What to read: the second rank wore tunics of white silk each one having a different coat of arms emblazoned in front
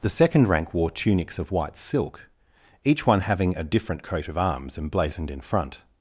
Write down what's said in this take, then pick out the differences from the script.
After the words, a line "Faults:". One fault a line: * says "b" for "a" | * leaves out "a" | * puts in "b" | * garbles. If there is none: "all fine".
the second rank wore tunics of white silk each one having a different coat of arms emblazoned in front
Faults:
all fine